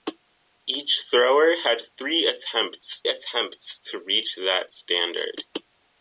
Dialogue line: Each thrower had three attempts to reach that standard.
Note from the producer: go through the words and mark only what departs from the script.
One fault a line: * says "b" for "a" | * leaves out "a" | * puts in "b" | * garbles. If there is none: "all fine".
* puts in "attempts"